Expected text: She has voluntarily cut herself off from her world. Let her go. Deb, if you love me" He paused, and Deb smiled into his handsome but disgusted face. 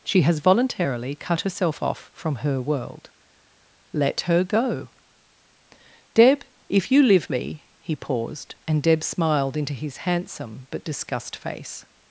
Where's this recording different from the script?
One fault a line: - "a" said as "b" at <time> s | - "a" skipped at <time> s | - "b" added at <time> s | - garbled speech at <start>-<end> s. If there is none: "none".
- "love" said as "live" at 7.0 s
- "disgusted" said as "disgust" at 10.8 s